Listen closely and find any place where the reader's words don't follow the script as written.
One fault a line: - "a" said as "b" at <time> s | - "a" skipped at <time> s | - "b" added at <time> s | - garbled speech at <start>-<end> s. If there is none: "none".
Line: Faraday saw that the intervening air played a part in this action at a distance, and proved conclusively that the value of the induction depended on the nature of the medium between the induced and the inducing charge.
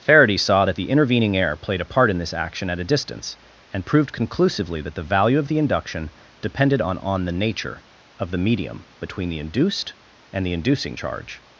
- "on" added at 7.0 s